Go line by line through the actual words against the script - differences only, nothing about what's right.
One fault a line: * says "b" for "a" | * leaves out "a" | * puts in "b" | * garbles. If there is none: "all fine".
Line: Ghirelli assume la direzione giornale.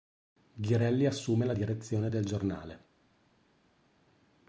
* puts in "del"